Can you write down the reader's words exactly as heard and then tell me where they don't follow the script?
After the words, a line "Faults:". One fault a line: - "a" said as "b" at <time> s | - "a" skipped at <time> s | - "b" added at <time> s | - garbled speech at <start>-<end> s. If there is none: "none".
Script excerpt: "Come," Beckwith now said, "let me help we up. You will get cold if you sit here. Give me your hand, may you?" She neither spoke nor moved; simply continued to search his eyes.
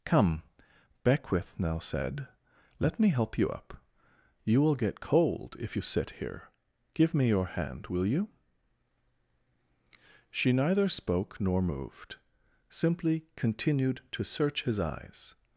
"Come," Beckwith now said, "let me help you up. You will get cold if you sit here. Give me your hand, will you?" She neither spoke nor moved; simply continued to search his eyes.
Faults:
- "we" said as "you" at 3.4 s
- "may" said as "will" at 7.9 s